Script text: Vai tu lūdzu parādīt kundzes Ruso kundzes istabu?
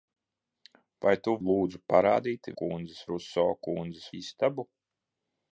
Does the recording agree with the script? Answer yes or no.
yes